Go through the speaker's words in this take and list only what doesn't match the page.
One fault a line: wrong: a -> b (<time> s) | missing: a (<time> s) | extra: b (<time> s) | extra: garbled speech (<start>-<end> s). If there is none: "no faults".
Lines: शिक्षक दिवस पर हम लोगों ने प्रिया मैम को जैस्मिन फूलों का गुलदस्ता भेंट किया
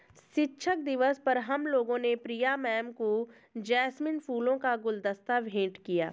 no faults